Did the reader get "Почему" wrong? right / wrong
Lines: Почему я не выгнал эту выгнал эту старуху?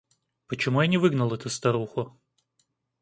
right